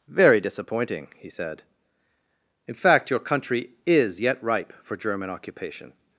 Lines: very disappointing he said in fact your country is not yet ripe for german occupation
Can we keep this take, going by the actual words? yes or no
no